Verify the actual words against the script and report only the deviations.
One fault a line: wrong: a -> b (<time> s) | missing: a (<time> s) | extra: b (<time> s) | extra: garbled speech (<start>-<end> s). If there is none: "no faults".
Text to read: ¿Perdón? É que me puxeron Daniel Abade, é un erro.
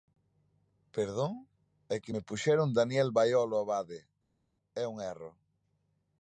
extra: Baiolo (3.2 s)